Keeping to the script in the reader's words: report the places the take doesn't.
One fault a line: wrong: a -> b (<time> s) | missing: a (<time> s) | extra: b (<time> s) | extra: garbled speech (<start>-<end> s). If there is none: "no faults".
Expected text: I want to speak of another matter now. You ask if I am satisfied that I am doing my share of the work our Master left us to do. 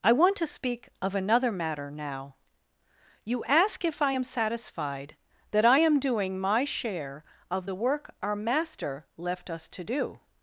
no faults